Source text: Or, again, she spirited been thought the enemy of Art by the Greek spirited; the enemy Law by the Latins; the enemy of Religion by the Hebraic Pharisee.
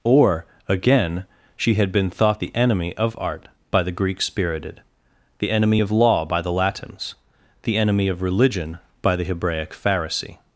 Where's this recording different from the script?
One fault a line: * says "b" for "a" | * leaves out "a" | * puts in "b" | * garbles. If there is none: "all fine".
* says "had" for "spirited"
* puts in "of"